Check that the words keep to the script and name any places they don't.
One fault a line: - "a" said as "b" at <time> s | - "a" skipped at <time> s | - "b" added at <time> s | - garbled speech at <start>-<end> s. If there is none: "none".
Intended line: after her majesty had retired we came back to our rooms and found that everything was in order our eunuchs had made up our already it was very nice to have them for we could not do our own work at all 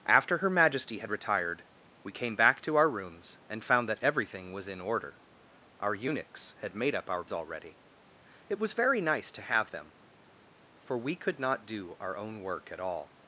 none